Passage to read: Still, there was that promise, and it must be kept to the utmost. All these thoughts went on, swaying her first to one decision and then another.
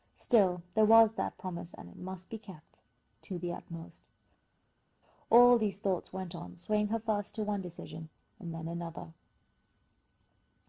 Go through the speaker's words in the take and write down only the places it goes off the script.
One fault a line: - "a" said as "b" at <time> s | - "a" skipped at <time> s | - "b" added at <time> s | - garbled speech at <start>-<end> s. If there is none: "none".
none